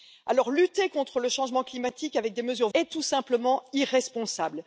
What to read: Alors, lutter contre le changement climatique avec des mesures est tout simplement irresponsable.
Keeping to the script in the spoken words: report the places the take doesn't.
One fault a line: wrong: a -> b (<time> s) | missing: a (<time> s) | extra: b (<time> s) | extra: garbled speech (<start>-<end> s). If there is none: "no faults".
no faults